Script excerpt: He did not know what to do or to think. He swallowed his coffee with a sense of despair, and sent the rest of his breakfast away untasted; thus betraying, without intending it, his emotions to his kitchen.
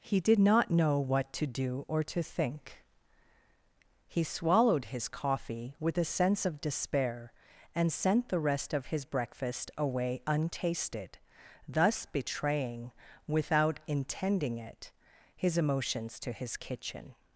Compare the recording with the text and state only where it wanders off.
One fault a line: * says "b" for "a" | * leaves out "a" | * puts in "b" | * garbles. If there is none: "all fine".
all fine